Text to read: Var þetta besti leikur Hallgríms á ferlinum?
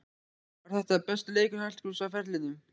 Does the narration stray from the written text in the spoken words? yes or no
no